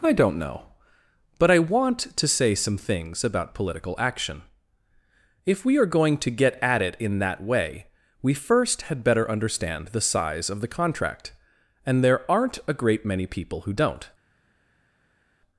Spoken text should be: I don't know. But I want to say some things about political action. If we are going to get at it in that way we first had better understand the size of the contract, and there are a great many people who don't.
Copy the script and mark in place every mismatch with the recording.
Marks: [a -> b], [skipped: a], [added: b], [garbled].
I don't know. But I want to say some things about political action. If we are going to get at it in that way we first had better understand the size of the contract, and there [are -> aren't] a great many people who don't.